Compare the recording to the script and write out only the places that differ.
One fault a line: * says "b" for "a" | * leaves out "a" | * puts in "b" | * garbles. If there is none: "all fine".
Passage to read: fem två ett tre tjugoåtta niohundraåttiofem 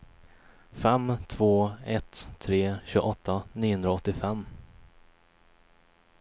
all fine